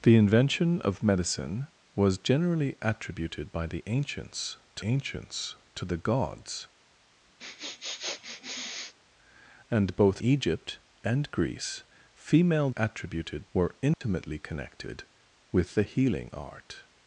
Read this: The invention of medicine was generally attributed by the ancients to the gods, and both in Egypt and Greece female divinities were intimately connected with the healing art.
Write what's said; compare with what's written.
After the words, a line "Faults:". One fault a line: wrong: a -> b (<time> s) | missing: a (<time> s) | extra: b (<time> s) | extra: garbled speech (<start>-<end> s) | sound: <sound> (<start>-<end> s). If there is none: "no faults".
The invention of medicine was generally attributed by the ancients to ancients to the gods, and both Egypt and Greece female attributed were intimately connected with the healing art.
Faults:
extra: ancients to (4.8 s)
sound: sniff (7.4-8.9 s)
missing: in (10.2 s)
wrong: divinities -> attributed (12.8 s)
sound: dropout (13.9-14.0 s)